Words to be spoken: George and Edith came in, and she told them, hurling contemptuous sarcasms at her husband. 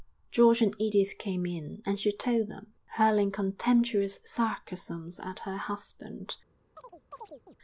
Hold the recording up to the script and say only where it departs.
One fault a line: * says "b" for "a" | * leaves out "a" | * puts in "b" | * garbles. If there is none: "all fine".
all fine